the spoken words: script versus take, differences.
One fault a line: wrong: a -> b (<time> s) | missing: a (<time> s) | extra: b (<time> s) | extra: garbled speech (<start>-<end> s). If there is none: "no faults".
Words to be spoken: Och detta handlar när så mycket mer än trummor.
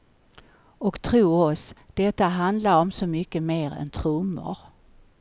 extra: tro oss (1.0 s)
wrong: när -> om (2.8 s)